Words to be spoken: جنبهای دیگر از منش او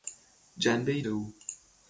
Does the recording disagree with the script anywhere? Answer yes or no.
yes